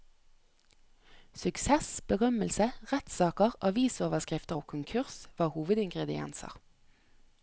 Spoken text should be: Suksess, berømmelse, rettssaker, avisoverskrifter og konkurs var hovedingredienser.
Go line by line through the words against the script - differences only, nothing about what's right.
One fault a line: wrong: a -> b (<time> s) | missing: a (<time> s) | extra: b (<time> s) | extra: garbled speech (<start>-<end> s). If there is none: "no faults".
no faults